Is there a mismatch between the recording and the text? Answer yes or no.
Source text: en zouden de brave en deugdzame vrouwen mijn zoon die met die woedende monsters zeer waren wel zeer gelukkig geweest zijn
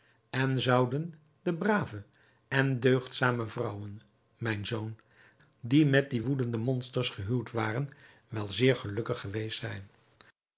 yes